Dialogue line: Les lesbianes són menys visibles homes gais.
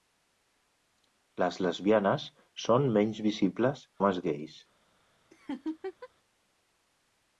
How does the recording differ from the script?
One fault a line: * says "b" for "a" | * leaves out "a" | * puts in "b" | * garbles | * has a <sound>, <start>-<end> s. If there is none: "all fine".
* has a laugh, 5.3-6.1 s